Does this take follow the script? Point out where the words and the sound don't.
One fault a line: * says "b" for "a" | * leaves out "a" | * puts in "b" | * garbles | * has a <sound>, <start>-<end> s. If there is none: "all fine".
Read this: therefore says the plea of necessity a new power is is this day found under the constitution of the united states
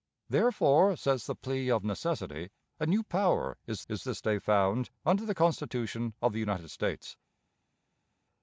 all fine